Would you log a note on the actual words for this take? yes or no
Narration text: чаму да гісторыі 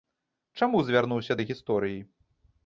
yes